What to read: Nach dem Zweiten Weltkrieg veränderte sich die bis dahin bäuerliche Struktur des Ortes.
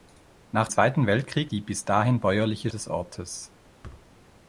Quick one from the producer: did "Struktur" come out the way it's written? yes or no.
no